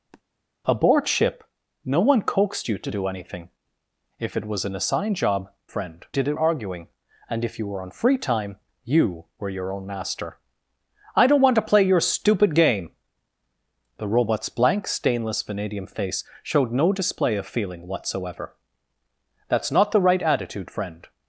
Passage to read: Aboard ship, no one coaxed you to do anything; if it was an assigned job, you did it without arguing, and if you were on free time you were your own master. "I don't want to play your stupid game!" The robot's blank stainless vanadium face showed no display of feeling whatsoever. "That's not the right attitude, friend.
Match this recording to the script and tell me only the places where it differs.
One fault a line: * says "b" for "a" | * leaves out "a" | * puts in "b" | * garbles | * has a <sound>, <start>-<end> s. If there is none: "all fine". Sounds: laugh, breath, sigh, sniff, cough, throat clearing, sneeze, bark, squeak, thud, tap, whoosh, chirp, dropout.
* has a sniff, 0.1-0.2 s
* says "friend" for "you"
* leaves out "without"